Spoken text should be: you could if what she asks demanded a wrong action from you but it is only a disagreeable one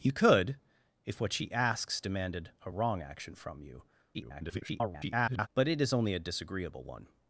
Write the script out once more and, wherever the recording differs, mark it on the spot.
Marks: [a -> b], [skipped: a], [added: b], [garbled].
you could if what she asks demanded a wrong action from you [garbled] but it is only a disagreeable one